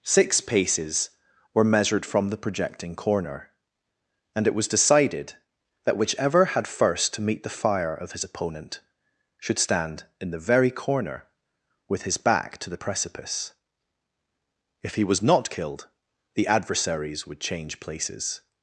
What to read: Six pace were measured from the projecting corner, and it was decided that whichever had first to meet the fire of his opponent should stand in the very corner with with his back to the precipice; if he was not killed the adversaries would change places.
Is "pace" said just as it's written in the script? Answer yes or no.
no